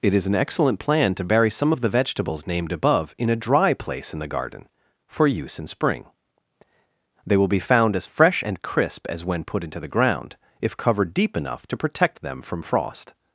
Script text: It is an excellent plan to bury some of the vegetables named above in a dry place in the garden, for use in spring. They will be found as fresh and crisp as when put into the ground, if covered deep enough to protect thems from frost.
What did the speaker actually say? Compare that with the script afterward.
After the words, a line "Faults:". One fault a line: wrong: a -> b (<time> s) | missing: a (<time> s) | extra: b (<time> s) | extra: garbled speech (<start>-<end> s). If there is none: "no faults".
It is an excellent plan to bury some of the vegetables named above in a dry place in the garden, for use in spring. They will be found as fresh and crisp as when put into the ground, if covered deep enough to protect them from frost.
Faults:
wrong: thems -> them (12.2 s)